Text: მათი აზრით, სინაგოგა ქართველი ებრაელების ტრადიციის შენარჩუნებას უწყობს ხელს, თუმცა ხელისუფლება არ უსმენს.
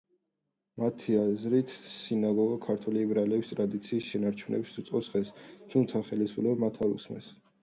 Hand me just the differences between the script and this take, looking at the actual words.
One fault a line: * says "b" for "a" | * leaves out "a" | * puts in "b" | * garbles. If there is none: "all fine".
* puts in "მათ"